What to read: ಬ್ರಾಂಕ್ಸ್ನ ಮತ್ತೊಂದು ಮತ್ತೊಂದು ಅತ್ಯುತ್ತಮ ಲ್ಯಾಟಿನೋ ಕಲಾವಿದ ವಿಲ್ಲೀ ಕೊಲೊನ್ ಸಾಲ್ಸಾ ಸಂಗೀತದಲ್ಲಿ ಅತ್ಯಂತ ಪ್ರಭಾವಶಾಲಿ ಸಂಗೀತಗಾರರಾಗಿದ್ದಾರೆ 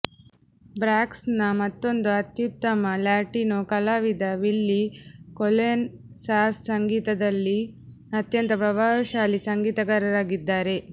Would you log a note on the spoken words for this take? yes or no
yes